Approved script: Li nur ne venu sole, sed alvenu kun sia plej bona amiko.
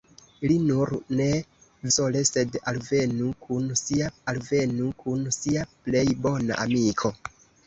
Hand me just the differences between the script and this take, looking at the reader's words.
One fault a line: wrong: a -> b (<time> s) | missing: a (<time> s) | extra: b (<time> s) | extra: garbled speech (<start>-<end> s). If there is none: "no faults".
missing: venu (1.3 s)
extra: alvenu kun sia (4.3 s)